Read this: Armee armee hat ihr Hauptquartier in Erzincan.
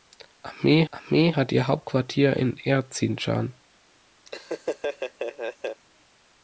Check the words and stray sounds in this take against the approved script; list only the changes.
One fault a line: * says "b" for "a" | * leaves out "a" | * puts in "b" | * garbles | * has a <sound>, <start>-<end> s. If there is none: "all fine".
* has a laugh, 4.3-5.8 s